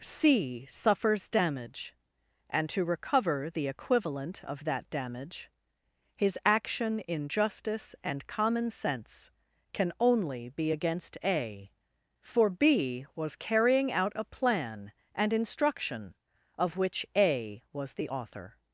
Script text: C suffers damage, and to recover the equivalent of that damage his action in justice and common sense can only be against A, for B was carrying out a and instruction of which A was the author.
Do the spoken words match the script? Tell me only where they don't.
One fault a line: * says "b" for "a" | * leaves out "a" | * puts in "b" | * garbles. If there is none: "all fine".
* puts in "plan"